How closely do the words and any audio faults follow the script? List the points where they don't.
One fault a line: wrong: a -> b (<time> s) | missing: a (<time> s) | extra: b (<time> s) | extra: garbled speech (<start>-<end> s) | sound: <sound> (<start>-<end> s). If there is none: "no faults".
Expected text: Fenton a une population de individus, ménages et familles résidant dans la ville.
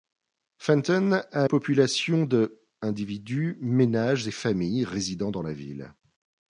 missing: une (1.5 s)